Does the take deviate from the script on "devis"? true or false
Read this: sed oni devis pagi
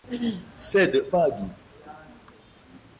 true